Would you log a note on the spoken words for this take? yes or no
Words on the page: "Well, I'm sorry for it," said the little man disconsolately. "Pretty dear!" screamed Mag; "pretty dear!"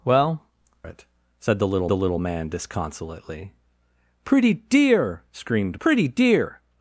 yes